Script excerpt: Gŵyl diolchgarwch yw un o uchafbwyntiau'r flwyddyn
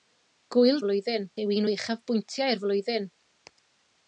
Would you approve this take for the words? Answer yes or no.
no